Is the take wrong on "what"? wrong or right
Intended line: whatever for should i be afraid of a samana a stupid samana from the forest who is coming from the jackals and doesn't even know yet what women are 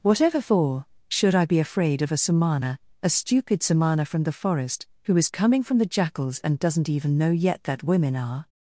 wrong